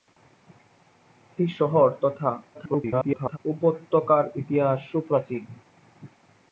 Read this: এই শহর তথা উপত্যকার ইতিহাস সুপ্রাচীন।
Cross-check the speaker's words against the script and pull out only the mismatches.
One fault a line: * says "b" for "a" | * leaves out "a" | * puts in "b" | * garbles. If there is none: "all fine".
* garbles